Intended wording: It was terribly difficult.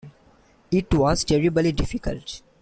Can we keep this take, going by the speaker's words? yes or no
yes